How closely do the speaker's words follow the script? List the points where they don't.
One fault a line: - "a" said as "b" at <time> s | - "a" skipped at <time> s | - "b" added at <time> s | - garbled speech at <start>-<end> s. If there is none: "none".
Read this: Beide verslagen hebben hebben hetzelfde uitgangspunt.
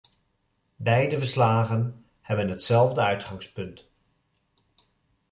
- "hebben" skipped at 2.5 s